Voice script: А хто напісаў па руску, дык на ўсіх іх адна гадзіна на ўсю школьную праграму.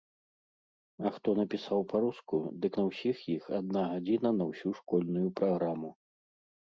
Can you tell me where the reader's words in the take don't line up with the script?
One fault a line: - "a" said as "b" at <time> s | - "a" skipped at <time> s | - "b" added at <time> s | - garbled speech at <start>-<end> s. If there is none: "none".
none